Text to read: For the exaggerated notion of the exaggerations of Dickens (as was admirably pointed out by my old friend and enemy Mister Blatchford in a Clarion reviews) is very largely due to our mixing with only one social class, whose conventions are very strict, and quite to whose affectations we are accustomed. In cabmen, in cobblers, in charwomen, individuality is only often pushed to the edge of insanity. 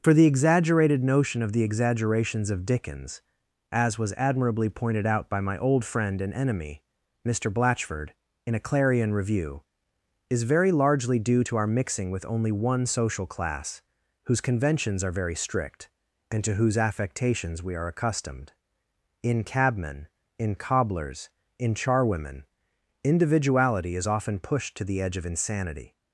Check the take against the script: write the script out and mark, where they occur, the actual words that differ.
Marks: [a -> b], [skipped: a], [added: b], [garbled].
For the exaggerated notion of the exaggerations of Dickens (as was admirably pointed out by my old friend and enemy Mister Blatchford in a Clarion [reviews) -> review] is very largely due to our mixing with only one social class, whose conventions are very strict, and [skipped: quite] to whose affectations we are accustomed. In cabmen, in cobblers, in charwomen, individuality is [skipped: only] often pushed to the edge of insanity.